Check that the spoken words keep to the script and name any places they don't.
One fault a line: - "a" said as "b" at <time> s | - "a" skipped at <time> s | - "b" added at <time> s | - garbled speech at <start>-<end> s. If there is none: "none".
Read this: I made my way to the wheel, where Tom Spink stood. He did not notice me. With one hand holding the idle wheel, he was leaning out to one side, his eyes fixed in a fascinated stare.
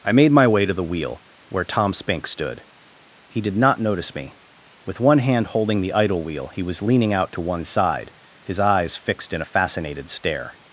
none